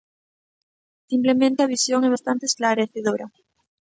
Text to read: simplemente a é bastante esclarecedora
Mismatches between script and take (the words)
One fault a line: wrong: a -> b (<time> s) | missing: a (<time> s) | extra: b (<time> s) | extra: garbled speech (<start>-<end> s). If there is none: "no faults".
extra: visión (1.7 s)